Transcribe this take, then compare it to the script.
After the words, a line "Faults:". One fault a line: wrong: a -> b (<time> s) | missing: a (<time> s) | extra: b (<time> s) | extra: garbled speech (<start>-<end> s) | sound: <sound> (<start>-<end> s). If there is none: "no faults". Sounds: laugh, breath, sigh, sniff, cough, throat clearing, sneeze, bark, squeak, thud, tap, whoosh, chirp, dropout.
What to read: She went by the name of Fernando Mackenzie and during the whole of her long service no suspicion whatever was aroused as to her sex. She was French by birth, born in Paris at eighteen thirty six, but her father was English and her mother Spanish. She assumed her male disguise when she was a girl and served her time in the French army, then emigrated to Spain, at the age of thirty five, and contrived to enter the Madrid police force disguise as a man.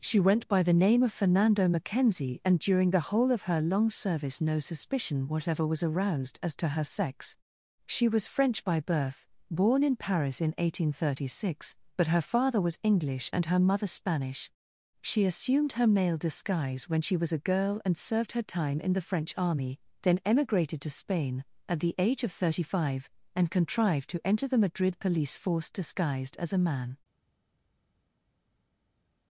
She went by the name of Fernando Mackenzie and during the whole of her long service no suspicion whatever was aroused as to her sex. She was French by birth, born in Paris in eighteen thirty six, but her father was English and her mother Spanish. She assumed her male disguise when she was a girl and served her time in the French army, then emigrated to Spain, at the age of thirty five, and contrived to enter the Madrid police force disguised as a man.
Faults:
wrong: at -> in (10.4 s)
wrong: disguise -> disguised (25.7 s)